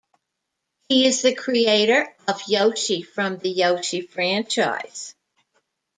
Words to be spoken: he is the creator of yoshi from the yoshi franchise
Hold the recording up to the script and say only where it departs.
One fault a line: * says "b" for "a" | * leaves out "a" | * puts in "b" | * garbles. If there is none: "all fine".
all fine